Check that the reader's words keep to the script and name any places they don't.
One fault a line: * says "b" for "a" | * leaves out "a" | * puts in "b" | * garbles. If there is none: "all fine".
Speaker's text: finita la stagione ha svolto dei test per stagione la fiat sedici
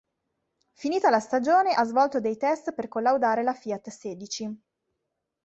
* says "collaudare" for "stagione"